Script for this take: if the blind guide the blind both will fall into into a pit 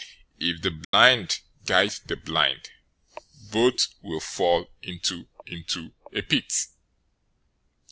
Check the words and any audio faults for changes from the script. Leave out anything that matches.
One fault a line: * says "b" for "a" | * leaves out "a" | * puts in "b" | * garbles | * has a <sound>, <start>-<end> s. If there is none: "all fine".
* has a dropout, 0.8-0.9 s